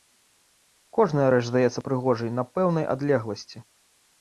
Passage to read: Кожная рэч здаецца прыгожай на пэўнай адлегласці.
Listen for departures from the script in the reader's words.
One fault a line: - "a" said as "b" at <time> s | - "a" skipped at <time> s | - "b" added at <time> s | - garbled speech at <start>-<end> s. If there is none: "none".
none